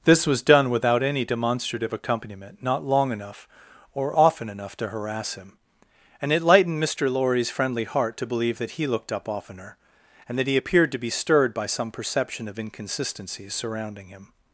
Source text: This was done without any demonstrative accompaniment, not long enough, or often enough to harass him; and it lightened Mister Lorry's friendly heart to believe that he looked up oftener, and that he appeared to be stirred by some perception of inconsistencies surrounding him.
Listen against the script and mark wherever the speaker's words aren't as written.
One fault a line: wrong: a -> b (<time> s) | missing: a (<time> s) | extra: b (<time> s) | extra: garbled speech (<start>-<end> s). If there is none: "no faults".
no faults